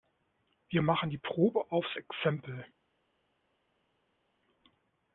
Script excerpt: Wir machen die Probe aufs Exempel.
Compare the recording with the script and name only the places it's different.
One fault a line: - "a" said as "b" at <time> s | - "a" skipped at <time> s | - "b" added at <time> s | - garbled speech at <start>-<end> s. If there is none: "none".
none